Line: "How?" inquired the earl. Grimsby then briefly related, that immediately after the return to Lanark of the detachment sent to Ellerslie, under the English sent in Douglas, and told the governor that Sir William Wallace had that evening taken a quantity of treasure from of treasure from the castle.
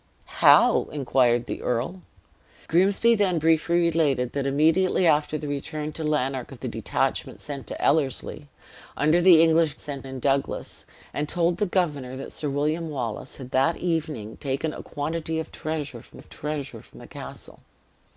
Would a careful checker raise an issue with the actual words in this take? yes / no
no